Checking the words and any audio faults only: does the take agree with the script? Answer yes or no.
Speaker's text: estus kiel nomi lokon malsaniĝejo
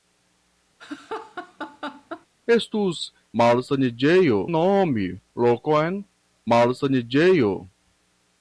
no